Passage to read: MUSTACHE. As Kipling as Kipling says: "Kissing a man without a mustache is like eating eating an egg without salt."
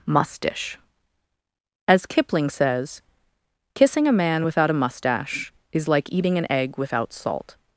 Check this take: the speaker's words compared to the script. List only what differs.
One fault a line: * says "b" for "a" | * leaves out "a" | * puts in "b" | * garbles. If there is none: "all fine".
* leaves out "as Kipling"
* leaves out "eating"